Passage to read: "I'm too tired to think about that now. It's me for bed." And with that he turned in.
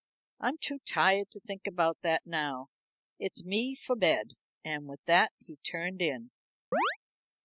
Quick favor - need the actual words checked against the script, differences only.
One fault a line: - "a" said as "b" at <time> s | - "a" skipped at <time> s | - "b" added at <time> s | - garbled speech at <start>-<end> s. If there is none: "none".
none